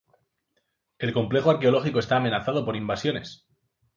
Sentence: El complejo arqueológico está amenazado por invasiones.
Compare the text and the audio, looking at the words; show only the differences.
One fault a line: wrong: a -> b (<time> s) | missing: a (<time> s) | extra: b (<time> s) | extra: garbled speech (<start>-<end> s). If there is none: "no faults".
no faults